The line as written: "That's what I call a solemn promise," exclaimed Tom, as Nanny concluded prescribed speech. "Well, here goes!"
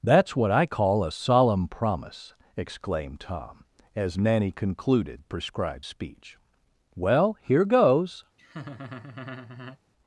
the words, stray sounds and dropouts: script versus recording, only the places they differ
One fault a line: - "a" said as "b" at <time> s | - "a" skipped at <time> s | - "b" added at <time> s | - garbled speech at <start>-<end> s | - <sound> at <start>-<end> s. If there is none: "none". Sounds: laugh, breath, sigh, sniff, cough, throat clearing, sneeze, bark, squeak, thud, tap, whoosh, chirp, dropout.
- laugh at 8.4-9.8 s